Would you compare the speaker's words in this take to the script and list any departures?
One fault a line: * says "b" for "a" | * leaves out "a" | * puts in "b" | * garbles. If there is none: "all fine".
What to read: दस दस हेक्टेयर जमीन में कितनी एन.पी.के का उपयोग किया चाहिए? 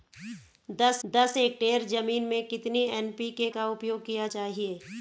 all fine